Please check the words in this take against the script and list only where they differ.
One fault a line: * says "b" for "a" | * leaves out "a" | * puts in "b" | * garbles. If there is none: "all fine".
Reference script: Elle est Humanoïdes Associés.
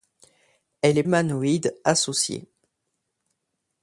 all fine